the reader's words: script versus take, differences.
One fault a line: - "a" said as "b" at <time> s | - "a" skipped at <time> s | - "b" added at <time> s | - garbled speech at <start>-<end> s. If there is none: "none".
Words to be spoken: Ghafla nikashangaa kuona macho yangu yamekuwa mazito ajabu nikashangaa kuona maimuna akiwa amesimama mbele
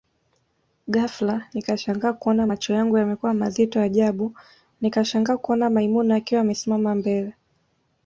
none